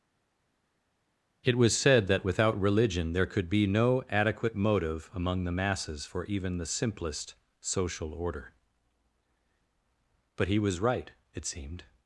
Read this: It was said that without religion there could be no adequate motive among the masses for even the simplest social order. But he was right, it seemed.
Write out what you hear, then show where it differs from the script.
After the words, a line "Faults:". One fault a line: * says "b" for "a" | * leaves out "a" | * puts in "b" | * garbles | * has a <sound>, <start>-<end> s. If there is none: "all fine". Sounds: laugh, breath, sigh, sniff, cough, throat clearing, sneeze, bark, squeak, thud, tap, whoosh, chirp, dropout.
It was said that without religion there could be no adequate motive among the masses for even the simplest social order. But he was right, it seemed.
Faults:
all fine